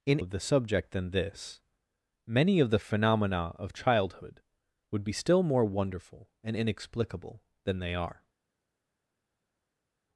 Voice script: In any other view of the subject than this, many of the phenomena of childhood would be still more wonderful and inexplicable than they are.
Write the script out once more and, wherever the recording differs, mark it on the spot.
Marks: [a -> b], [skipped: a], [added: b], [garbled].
In [skipped: any other view] of the subject than this, many of the phenomena of childhood would be still more wonderful and inexplicable than they are.